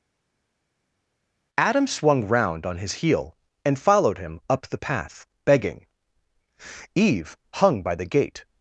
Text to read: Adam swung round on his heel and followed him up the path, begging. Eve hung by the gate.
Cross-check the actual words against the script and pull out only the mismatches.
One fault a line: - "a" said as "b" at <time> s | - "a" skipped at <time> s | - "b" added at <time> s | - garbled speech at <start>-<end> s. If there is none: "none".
none